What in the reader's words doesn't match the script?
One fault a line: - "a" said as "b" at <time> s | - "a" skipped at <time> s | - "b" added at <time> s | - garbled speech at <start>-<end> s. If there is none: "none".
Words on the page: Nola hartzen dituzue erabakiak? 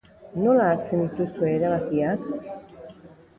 none